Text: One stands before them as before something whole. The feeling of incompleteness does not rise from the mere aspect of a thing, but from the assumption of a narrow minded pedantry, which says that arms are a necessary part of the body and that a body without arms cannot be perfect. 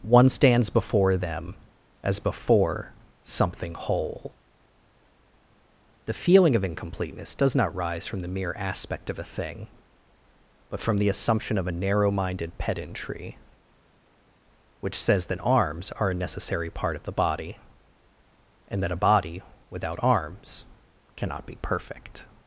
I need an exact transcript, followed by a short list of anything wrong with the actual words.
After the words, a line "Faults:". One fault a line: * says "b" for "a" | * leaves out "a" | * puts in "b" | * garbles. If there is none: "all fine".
One stands before them as before something whole. The feeling of incompleteness does not rise from the mere aspect of a thing, but from the assumption of a narrow minded pedantry, which says that arms are a necessary part of the body and that a body without arms cannot be perfect.
Faults:
all fine